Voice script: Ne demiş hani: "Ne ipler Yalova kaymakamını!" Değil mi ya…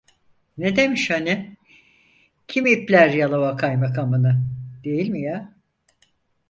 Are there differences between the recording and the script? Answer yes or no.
yes